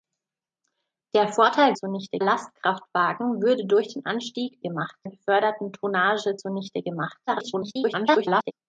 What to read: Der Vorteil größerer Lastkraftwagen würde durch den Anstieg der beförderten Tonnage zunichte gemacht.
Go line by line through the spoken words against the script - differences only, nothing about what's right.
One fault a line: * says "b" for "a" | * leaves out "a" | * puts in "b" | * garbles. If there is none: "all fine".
* says "zunichte" for "größerer"
* says "gemacht" for "der"
* garbles